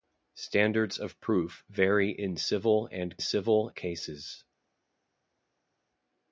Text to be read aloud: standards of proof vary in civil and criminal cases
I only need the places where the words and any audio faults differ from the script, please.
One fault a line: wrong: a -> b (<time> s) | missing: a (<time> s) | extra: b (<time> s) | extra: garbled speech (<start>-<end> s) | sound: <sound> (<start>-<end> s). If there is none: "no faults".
wrong: criminal -> civil (3.2 s)